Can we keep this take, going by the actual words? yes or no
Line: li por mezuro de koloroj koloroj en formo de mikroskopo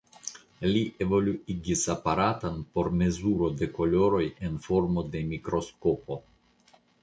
no